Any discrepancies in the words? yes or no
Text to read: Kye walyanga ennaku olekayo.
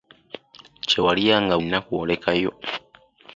no